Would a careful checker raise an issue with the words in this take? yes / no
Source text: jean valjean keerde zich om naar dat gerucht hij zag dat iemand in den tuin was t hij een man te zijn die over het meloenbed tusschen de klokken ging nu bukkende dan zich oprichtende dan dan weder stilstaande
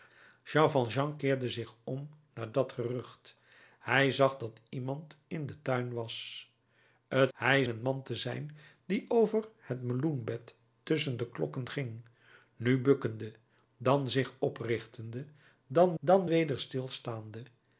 no